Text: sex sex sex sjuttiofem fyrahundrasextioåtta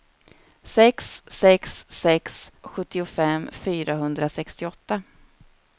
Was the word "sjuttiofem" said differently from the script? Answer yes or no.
no